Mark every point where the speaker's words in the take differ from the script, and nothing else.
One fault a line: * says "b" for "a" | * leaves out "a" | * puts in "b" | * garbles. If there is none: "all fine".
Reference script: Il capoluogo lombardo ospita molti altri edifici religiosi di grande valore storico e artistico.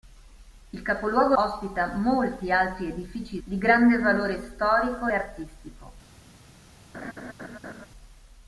* leaves out "lombardo"
* leaves out "religiosi"
* leaves out "e"